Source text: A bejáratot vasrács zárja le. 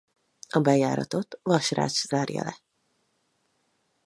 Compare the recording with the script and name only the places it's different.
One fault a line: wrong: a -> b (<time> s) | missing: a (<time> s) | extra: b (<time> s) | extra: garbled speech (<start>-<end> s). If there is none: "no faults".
no faults